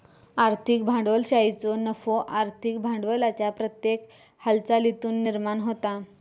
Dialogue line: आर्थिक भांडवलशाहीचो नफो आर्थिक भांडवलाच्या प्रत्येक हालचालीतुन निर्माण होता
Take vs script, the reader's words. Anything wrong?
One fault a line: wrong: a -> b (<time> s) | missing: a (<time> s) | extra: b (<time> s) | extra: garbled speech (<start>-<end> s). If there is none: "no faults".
no faults